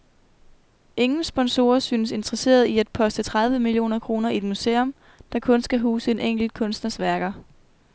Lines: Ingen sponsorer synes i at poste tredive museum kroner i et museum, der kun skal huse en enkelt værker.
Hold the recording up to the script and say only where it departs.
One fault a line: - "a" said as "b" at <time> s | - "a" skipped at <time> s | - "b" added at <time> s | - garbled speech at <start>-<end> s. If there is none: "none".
- "interesserede" added at 2.1 s
- "museum" said as "millioner" at 3.6 s
- "kunstners" added at 6.5 s